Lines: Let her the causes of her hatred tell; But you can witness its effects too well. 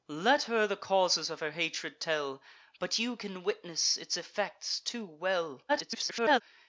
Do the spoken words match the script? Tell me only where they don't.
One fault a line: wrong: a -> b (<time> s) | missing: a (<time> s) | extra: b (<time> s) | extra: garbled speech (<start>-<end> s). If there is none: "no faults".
extra: garbled speech (5.7-6.4 s)